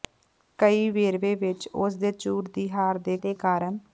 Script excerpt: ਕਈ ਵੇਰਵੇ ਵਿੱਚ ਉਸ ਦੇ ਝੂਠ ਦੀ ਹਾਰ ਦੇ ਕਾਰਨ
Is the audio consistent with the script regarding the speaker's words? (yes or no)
no